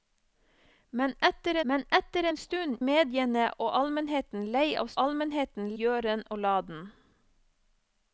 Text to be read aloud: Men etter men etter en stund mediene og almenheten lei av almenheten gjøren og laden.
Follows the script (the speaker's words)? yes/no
yes